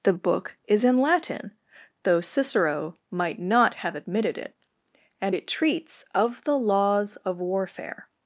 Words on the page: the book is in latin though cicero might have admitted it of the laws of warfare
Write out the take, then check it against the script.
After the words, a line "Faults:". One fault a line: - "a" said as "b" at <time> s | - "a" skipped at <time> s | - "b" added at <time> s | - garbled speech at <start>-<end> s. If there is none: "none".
the book is in latin though cicero might not have admitted it and it treats of the laws of warfare
Faults:
- "not" added at 3.4 s
- "and it treats" added at 5.2 s